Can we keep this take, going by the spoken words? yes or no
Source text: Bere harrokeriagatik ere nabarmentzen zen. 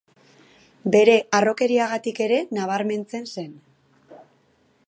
yes